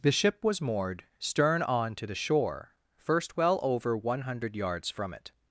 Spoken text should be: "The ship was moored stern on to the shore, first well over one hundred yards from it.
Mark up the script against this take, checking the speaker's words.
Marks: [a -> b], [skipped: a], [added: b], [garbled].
"The ship was moored stern on to the shore, first well over one hundred yards from it.